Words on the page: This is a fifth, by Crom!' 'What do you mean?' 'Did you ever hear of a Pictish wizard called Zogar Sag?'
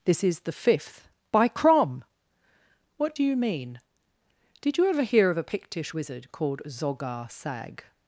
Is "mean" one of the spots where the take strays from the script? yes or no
no